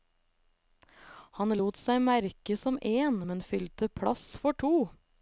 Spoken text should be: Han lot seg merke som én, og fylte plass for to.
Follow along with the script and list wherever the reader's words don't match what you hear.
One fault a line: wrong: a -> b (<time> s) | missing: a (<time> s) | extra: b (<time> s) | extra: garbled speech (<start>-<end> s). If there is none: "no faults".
wrong: og -> men (3.3 s)